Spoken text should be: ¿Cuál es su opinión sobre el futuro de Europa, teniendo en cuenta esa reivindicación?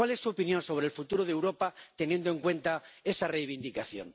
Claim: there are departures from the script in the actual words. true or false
false